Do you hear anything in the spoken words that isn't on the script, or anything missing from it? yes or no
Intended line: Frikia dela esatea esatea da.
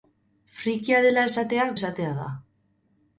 no